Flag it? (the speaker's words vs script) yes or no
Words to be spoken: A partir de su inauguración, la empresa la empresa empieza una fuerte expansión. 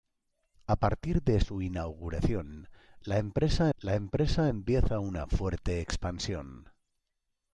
no